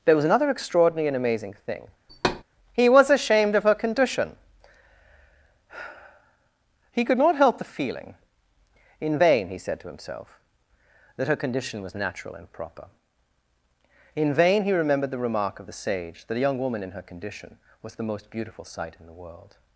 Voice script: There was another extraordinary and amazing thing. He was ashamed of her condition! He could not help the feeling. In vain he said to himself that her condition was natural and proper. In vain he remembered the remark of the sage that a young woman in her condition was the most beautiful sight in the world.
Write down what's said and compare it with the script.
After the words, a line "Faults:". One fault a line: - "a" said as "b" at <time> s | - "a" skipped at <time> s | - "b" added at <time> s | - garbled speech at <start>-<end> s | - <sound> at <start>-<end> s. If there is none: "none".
There was another extraordinary and amazing thing. He was ashamed of her condition! He could not help the feeling. In vain he said to himself that her condition was natural and proper. In vain he remembered the remark of the sage that a young woman in her condition was the most beautiful sight in the world.
Faults:
- thud at 2.1-2.4 s